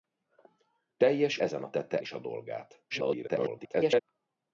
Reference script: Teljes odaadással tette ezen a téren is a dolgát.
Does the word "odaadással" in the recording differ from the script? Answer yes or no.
yes